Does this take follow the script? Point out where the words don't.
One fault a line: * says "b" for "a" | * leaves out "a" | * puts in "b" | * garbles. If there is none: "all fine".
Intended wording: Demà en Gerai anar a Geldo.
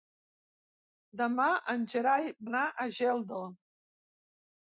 all fine